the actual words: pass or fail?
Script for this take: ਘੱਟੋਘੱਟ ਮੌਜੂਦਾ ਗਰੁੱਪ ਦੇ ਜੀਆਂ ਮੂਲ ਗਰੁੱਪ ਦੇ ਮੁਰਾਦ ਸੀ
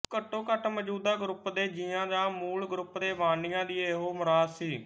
fail